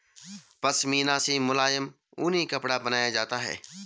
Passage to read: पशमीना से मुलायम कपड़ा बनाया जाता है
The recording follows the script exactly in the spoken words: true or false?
false